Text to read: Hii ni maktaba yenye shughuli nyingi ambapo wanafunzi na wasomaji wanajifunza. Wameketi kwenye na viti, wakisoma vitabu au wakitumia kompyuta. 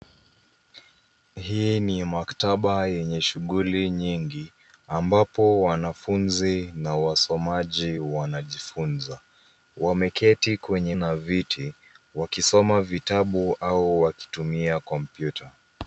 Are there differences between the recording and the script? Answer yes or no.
no